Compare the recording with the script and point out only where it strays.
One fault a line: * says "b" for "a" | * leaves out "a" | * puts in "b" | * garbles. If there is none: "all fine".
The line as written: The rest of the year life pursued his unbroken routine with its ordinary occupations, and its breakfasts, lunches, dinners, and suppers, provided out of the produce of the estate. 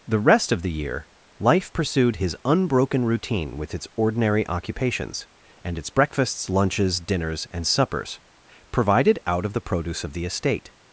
all fine